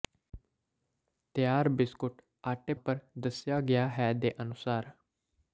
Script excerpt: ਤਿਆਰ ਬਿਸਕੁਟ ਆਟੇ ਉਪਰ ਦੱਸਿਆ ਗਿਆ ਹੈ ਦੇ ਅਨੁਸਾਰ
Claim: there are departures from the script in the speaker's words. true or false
false